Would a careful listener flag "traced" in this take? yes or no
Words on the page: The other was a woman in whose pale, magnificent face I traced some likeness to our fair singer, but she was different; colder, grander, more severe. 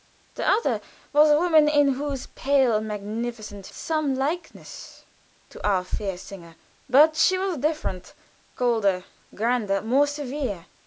yes